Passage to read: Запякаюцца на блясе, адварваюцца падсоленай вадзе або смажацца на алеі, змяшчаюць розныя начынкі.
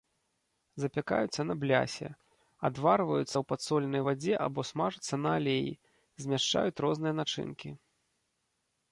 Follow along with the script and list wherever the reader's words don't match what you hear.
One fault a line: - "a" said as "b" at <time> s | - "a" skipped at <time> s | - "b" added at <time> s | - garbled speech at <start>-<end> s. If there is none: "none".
- "ў" added at 3.3 s